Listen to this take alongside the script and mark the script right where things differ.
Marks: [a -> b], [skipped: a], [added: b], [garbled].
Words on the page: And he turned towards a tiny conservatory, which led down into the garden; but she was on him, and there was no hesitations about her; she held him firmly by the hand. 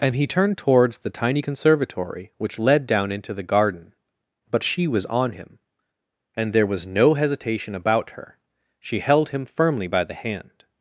And he turned towards [a -> the] tiny conservatory, which led down into the garden; but she was on him, and there was no [hesitations -> hesitation] about her; she held him firmly by the hand.